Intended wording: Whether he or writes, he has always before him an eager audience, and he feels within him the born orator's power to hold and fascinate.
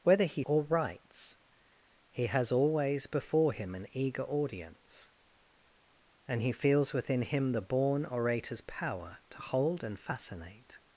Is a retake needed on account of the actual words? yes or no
no